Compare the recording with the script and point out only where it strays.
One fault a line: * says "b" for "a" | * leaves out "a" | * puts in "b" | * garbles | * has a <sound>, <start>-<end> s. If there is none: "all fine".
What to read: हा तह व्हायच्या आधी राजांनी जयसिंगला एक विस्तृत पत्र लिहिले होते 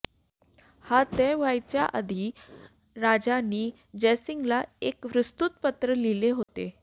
* has a dropout, 6.4-6.5 s